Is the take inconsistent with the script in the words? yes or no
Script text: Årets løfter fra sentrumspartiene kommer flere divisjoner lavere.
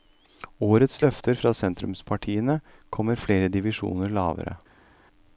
no